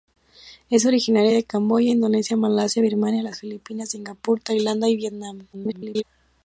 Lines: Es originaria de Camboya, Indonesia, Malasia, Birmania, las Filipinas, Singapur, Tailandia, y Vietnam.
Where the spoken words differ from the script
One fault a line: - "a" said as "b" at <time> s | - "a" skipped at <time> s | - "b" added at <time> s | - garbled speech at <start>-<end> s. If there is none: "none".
- garbled speech at 5.5-6.0 s